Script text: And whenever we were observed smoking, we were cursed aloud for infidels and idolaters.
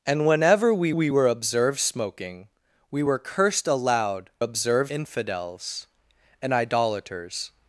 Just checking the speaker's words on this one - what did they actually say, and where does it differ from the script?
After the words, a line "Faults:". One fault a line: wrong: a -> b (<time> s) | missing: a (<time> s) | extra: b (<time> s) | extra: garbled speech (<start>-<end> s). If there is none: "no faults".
And whenever we we were observed smoking, we were cursed aloud observed infidels and idolaters.
Faults:
extra: we (0.9 s)
wrong: for -> observed (4.4 s)